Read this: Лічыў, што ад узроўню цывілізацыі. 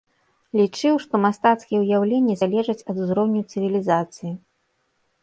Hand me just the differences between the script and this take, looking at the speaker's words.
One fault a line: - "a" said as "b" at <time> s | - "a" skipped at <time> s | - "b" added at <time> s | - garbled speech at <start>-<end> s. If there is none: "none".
- "мастацкія ўяўленні залежаць" added at 1.2 s